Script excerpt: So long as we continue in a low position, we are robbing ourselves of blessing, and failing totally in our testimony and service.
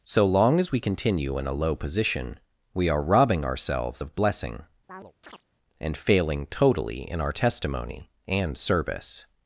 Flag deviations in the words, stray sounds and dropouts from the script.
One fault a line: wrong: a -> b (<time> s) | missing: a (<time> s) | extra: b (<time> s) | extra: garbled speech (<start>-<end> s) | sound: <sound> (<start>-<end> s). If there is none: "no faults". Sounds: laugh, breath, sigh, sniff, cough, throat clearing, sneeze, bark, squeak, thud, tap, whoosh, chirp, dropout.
sound: chirp (4.9-5.4 s)